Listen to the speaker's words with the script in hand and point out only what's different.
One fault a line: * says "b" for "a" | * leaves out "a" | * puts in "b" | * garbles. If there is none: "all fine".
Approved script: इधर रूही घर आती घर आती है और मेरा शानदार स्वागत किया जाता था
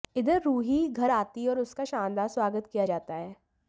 * leaves out "घर आती"
* says "उसका" for "मेरा"
* says "है" for "था"